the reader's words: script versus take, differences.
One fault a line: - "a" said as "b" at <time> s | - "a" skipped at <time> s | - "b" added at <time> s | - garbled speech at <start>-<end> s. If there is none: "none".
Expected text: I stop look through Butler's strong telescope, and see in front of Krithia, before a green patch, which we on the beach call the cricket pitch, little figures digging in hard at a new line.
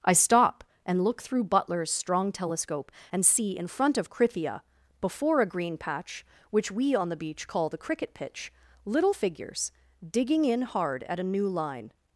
- "and" added at 0.8 s